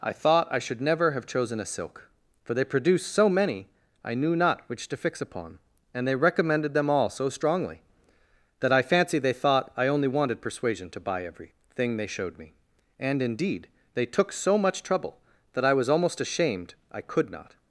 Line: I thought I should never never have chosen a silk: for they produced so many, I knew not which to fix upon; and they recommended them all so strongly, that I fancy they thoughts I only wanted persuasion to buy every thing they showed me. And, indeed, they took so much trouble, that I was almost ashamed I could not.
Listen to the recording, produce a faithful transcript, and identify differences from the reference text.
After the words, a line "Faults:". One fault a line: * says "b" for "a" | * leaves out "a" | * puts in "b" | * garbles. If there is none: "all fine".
I thought I should never have chosen a silk: for they produced so many, I knew not which to fix upon; and they recommended them all so strongly, that I fancy they thought I only wanted persuasion to buy every thing they showed me. And, indeed, they took so much trouble, that I was almost ashamed I could not.
Faults:
* leaves out "never"
* says "thought" for "thoughts"